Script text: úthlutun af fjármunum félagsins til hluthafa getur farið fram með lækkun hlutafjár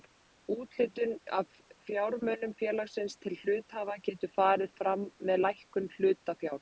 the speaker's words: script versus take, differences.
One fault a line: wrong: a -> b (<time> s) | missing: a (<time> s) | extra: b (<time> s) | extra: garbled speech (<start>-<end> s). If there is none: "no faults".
no faults